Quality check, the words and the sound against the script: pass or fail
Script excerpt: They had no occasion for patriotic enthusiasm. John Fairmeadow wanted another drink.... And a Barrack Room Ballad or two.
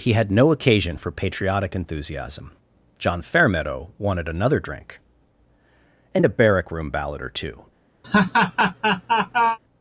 fail